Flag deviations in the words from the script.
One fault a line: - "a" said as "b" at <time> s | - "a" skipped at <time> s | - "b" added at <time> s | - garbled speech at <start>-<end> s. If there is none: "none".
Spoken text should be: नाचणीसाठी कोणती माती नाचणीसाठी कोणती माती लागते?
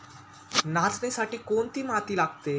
- "नाचणीसाठी कोणती माती" skipped at 2.2 s